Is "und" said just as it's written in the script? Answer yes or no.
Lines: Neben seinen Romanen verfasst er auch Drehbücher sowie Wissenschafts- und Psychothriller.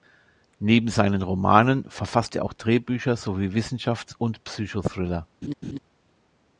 yes